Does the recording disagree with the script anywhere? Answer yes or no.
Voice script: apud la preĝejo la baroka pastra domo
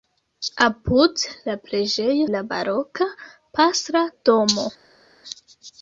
no